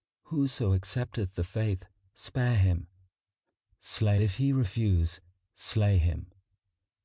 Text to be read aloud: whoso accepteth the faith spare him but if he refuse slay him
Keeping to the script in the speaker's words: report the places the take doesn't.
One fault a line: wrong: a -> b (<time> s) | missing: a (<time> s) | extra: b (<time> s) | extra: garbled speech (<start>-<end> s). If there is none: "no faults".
wrong: but -> slay (3.8 s)